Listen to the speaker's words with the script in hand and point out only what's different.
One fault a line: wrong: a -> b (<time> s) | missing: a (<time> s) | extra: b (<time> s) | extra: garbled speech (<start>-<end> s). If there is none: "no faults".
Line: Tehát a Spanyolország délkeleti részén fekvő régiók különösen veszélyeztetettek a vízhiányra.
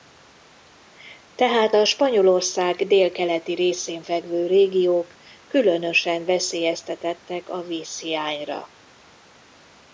no faults